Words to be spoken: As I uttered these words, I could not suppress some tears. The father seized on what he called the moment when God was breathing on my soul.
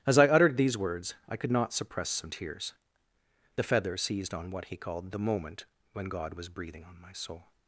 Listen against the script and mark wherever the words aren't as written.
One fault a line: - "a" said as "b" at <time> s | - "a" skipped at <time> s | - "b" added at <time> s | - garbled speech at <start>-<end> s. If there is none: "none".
- "father" said as "feather" at 3.6 s